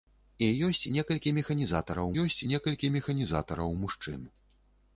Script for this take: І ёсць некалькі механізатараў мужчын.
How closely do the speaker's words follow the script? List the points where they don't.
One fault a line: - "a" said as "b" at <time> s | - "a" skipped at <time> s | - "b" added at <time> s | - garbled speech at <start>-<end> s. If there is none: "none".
- "ёсць некалькі механізатараў" added at 2.2 s